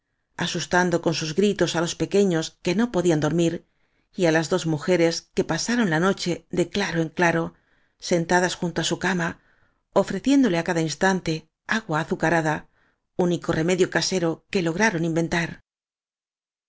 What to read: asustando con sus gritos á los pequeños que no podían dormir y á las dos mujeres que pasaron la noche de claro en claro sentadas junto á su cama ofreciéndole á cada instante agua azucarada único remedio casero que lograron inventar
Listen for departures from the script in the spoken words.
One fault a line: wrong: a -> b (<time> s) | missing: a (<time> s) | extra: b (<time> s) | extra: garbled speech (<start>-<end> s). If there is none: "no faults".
no faults